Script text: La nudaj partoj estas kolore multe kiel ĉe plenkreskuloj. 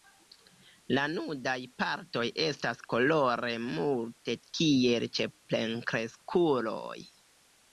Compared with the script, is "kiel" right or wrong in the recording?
right